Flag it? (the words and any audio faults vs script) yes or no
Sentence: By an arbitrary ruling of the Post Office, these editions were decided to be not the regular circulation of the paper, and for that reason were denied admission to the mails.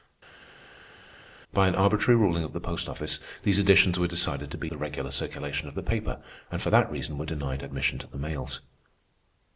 yes